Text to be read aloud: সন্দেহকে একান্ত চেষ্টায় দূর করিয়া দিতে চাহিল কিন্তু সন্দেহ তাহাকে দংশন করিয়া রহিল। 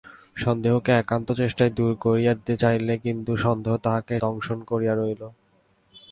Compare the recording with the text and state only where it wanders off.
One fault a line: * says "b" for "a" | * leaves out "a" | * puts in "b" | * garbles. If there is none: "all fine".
all fine